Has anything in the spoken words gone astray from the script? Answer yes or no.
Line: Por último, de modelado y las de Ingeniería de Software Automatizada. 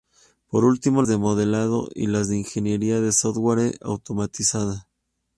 no